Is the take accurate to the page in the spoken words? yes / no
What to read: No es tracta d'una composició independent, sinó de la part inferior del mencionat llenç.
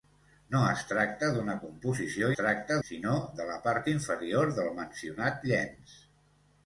no